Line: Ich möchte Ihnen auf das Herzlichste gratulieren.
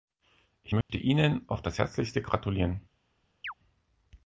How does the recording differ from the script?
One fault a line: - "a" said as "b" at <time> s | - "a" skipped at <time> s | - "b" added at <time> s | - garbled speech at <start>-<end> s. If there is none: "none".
none